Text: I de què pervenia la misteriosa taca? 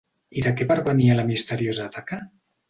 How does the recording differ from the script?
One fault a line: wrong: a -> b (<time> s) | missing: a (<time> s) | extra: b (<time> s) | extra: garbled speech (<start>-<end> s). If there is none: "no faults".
no faults